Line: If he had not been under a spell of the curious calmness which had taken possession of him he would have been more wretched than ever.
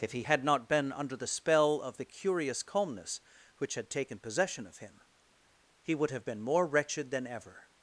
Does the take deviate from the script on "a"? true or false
true